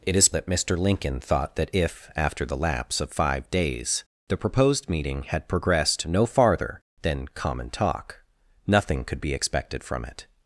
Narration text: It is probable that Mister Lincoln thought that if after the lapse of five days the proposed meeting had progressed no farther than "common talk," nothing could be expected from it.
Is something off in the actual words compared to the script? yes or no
yes